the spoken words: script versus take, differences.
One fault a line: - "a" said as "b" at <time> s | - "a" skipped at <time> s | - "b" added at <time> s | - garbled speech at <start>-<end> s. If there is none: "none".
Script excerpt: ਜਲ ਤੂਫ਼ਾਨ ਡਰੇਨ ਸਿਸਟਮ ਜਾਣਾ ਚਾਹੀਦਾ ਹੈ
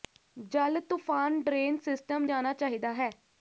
none